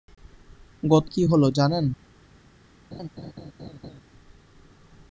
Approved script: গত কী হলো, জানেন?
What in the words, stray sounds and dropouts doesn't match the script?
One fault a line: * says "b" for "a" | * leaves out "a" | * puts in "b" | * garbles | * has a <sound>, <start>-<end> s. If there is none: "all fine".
* has a laugh, 2.9-4.0 s